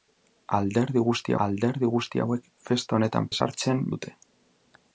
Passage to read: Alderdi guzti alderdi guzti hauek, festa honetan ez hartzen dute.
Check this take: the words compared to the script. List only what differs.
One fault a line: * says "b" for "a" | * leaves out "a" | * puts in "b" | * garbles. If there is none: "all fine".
all fine